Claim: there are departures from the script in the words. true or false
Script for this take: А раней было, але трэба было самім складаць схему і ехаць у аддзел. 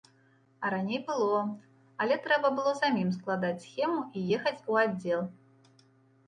false